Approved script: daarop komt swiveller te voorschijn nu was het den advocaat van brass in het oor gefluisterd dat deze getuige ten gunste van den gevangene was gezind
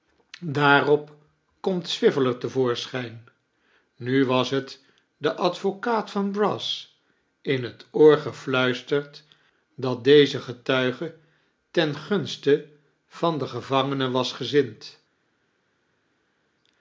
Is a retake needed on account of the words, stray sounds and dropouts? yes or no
no